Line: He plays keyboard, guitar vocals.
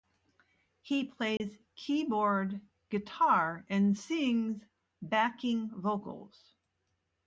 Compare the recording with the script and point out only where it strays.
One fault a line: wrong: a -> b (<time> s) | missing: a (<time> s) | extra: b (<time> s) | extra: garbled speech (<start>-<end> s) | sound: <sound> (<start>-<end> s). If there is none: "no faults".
sound: dropout (1.4-1.4 s)
extra: and sings backing (3.7 s)